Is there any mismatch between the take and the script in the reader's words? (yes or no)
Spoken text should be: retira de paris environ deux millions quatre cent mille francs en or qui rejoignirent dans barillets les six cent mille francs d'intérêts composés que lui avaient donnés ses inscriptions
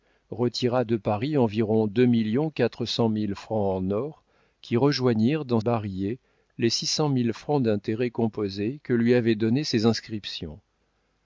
no